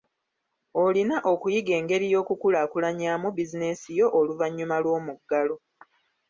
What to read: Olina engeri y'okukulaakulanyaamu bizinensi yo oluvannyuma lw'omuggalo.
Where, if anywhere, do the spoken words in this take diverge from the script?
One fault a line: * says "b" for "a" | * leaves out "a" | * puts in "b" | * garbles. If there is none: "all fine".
* puts in "okuyiga"